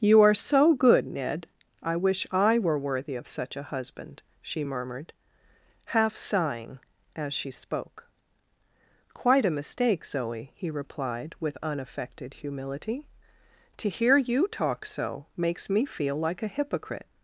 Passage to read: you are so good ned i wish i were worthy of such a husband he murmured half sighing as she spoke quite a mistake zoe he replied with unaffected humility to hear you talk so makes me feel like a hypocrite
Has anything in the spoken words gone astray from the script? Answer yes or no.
yes